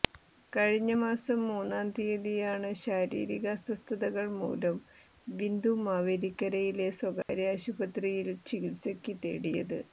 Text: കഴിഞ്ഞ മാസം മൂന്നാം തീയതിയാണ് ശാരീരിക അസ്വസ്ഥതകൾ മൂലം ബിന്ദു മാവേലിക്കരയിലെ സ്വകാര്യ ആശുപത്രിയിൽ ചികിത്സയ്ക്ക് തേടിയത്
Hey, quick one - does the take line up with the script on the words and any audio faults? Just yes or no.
no